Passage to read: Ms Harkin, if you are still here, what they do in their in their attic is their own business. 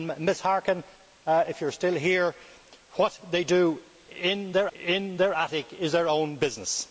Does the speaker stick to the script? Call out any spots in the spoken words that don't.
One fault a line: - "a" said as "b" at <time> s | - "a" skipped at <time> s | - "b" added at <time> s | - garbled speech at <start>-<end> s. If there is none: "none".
none